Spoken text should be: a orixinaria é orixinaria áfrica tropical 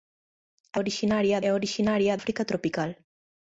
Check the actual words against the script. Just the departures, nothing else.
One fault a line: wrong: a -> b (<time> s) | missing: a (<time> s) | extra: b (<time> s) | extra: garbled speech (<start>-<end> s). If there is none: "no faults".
no faults